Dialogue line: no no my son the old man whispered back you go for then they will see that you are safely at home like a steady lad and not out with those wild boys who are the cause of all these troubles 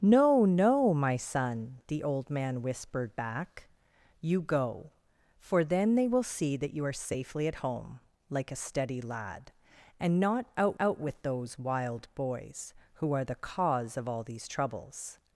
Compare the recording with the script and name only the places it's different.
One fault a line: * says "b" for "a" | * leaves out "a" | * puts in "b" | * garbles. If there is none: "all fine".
* puts in "out"